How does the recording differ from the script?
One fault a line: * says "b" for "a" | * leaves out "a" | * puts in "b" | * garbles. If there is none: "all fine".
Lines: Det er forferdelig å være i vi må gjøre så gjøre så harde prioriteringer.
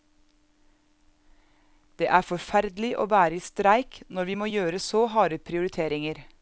* puts in "streik når"
* leaves out "gjøre så"